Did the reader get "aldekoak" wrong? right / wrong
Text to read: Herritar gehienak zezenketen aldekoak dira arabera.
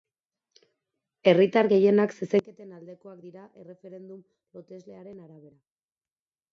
right